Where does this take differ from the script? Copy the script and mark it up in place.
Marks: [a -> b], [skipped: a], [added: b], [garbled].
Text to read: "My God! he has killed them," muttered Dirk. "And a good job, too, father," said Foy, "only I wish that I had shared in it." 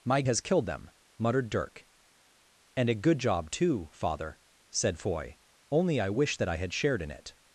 "My [skipped: God! he] has killed them," muttered Dirk. "And a good job, too, father," said Foy, "only I wish that I had shared in it."